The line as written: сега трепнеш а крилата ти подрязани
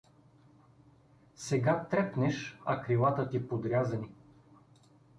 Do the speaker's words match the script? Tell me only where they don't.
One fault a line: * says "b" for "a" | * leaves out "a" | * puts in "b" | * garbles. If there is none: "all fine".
all fine